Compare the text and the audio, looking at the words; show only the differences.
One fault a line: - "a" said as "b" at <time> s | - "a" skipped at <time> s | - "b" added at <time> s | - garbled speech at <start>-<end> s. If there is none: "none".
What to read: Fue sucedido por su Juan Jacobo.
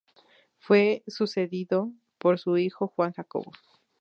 - "hijo" added at 2.6 s